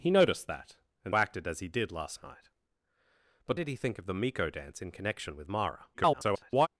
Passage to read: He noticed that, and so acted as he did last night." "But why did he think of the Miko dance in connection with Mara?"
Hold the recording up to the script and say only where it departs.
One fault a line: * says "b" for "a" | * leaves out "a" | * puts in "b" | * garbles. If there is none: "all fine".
* leaves out "so"
* leaves out "why"
* garbles